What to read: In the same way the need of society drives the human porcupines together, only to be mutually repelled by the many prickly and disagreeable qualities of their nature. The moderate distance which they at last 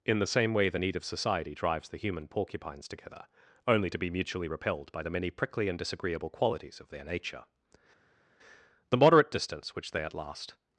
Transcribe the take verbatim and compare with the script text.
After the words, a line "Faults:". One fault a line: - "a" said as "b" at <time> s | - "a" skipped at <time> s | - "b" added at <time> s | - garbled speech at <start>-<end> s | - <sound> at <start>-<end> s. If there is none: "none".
In the same way the need of society drives the human porcupines together, only to be mutually repelled by the many prickly and disagreeable qualities of their nature. The moderate distance which they at last
Faults:
none